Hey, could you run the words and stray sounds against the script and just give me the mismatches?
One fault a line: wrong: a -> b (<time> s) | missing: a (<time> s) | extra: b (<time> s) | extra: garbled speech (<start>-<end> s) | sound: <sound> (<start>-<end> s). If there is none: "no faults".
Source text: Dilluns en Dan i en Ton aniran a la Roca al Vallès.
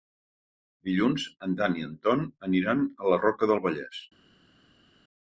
wrong: al -> del (3.5 s)